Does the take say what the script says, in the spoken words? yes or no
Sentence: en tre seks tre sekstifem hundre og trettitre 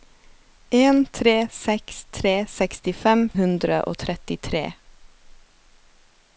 yes